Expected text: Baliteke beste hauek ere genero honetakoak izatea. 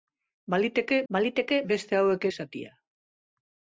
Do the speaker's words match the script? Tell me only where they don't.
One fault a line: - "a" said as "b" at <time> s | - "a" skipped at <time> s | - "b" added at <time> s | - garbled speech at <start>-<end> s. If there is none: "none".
- "baliteke" added at 1.1 s
- "ere genero honetakoak" skipped at 2.3 s